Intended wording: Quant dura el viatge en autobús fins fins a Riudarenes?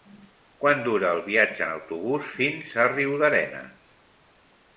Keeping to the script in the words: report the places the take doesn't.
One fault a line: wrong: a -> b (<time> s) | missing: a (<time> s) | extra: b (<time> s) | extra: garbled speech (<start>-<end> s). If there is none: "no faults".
missing: fins (2.7 s)